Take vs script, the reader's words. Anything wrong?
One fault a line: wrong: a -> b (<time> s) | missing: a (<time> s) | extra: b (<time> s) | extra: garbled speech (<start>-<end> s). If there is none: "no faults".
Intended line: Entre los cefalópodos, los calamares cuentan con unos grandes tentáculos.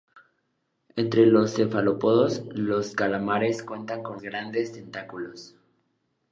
missing: unos (4.2 s)